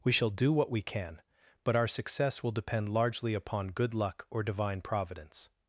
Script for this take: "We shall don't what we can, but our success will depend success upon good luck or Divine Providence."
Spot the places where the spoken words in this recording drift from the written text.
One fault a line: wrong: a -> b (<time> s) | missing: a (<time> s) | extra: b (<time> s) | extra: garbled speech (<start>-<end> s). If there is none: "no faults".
wrong: don't -> do (0.3 s)
wrong: success -> largely (2.9 s)